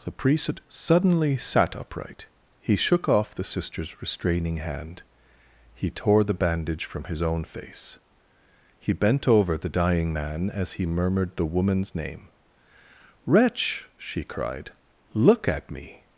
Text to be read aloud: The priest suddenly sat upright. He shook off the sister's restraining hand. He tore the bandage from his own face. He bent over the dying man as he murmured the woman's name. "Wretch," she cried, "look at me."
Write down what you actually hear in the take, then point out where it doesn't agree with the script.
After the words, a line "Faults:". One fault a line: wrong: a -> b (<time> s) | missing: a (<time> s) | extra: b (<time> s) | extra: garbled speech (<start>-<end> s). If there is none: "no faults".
The priest suddenly sat upright. He shook off the sister's restraining hand. He tore the bandage from his own face. He bent over the dying man as he murmured the woman's name. "Wretch," she cried, "look at me."
Faults:
no faults